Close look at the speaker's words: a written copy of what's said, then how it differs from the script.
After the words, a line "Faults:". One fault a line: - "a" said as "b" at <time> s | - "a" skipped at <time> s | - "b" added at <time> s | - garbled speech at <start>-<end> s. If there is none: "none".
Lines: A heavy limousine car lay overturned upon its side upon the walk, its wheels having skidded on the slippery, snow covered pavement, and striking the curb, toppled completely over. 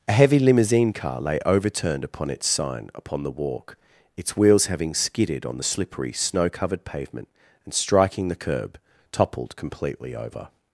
A heavy limousine car lay overturned upon its sign upon the walk, its wheels having skidded on the slippery, snow covered pavement, and striking the curb, toppled completely over.
Faults:
- "side" said as "sign" at 2.5 s